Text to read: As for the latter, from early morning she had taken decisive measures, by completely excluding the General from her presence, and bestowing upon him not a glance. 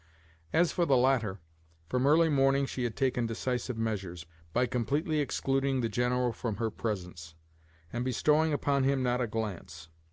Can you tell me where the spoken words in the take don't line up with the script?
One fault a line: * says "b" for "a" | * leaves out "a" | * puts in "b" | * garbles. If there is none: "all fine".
all fine